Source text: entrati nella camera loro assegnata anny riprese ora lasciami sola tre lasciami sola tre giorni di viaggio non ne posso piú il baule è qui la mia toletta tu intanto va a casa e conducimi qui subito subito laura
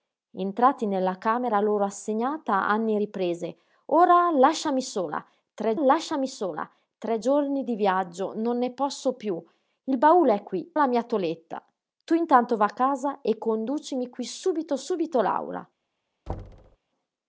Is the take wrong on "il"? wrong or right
right